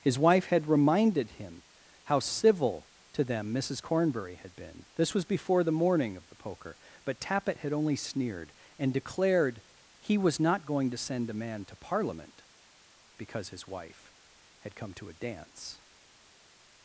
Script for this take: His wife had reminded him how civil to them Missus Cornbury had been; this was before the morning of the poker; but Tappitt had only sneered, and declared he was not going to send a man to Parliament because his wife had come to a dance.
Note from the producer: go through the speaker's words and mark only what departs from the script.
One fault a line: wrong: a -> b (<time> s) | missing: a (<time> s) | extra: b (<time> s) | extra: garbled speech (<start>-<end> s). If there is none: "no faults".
no faults